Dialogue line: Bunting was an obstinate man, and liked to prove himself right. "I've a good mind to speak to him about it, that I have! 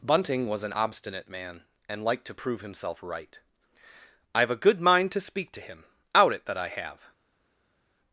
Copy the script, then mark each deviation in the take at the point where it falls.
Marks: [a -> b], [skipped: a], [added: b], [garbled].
Bunting was an obstinate man, and liked to prove himself right. "I've a good mind to speak to him [about -> out] it, that I have!